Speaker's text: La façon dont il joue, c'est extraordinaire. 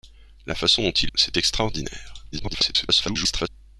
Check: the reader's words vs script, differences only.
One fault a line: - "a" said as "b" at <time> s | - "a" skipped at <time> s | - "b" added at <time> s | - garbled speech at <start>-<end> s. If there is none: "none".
- "joue" skipped at 1.1 s
- garbled speech at 2.3-3.5 s